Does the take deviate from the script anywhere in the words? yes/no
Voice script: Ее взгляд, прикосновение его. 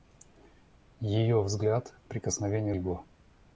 no